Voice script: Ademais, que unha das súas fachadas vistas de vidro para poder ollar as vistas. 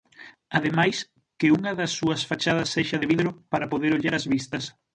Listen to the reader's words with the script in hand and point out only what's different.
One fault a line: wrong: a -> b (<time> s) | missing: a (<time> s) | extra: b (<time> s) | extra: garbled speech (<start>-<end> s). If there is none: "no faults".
wrong: vistas -> sexa (2.8 s)